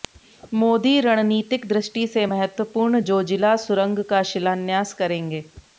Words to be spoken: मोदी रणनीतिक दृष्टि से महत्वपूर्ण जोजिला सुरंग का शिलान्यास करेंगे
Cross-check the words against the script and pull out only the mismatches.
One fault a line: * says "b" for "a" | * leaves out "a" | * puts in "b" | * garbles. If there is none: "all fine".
all fine